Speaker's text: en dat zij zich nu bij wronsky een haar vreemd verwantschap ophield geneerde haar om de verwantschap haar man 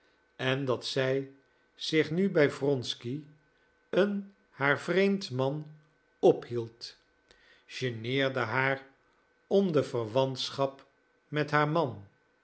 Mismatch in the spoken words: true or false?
true